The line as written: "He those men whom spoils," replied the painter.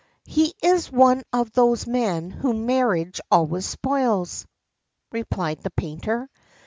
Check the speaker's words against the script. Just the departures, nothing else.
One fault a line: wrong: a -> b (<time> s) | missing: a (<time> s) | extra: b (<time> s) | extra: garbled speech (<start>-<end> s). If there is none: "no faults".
extra: is one of (0.6 s)
extra: marriage always (2.7 s)